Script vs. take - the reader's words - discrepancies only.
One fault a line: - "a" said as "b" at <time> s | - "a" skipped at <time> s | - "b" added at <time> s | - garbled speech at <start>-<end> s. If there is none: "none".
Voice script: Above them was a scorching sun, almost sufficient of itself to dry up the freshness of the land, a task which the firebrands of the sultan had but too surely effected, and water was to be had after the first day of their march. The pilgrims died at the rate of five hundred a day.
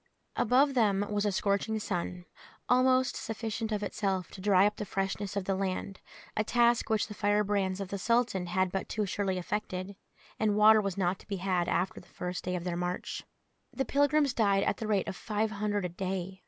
- "not" added at 11.0 s